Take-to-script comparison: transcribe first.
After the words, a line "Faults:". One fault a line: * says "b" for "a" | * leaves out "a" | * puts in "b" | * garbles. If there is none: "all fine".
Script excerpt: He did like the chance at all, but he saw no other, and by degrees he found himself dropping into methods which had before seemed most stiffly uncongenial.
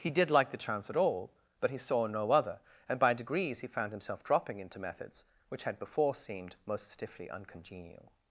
He did like the chance at all, but he saw no other, and by degrees he found himself dropping into methods which had before seemed most stiffly uncongenial.
Faults:
all fine